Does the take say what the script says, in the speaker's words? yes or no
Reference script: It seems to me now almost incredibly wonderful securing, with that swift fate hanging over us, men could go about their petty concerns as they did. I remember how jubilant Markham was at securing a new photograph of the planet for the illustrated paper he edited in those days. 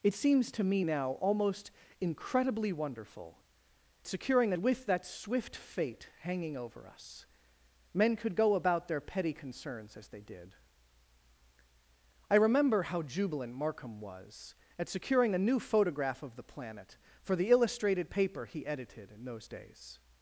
yes